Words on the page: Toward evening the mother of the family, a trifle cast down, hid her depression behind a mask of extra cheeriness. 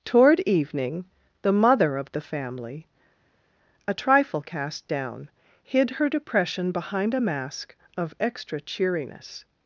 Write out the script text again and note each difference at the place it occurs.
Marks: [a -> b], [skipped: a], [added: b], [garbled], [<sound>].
Toward evening the mother of the family, a trifle cast down, hid her depression behind a mask of extra cheeriness.